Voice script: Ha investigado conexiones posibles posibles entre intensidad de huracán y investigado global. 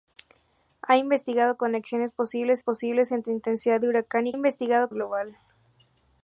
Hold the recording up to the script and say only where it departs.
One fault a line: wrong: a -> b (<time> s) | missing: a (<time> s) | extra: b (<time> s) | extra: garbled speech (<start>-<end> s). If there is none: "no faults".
no faults